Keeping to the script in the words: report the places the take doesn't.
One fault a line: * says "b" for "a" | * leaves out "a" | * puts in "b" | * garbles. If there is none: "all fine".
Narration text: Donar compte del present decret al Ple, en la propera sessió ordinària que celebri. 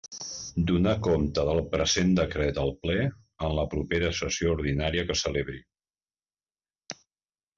all fine